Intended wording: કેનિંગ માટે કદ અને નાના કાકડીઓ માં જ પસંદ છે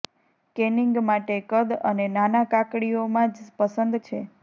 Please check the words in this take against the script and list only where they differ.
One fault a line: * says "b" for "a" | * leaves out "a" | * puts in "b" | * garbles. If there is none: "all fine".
all fine